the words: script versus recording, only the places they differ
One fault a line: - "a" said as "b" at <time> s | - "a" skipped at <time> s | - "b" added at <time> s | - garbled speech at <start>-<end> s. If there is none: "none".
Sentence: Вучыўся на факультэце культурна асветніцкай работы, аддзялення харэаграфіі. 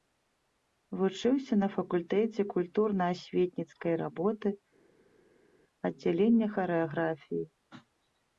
none